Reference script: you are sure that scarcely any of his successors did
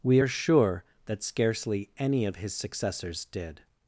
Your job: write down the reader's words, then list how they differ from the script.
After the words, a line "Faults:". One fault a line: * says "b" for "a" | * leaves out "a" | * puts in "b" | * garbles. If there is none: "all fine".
we are sure that scarcely any of his successors did
Faults:
* says "we" for "you"